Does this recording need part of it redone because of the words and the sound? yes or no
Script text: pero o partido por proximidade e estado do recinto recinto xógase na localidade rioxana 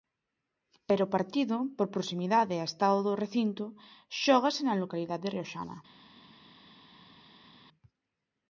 yes